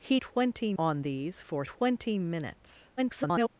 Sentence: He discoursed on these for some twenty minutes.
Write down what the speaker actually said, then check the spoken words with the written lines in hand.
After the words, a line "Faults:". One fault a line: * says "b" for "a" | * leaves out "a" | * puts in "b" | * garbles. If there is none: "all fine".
He twenty on these for twenty minutes. [garbled]
Faults:
* says "twenty" for "discoursed"
* leaves out "some"
* garbles